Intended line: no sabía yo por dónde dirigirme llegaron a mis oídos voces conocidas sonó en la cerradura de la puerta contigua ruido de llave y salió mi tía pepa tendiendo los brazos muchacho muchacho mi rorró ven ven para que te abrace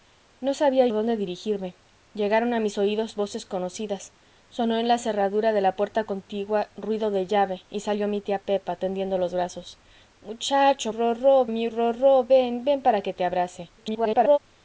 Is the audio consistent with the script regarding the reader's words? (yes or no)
no